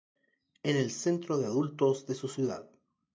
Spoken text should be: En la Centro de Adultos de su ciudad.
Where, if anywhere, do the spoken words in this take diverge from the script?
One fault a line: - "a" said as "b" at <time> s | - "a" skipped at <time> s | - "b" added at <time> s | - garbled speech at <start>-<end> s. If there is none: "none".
- "la" said as "el" at 0.8 s